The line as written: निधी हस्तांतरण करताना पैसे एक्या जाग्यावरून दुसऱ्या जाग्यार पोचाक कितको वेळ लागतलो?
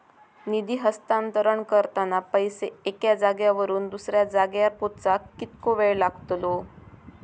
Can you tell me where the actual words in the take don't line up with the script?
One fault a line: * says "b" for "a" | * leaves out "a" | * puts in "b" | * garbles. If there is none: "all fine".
all fine